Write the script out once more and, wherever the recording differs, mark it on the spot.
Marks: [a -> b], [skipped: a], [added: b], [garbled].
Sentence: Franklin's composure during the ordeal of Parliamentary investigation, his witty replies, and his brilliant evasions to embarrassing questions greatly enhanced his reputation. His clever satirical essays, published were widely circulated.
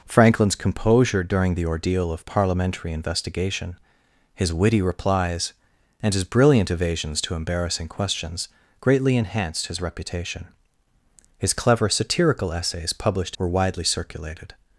Franklin's composure during the ordeal of Parliamentary investigation, his witty replies, and his brilliant evasions to embarrassing questions greatly enhanced his reputation. His clever satirical essays, published were widely circulated.